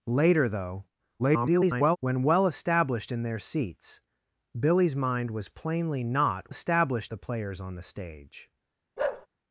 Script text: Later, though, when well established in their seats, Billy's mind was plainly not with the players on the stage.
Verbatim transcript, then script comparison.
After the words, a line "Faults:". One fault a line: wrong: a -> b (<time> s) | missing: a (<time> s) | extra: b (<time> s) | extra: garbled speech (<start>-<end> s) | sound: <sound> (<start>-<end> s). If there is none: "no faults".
Later, though, [garbled] when well established in their seats, Billy's mind was plainly not established the players on the stage.
Faults:
extra: garbled speech (1.2-2.0 s)
wrong: with -> established (6.5 s)
sound: bark (9.0-9.3 s)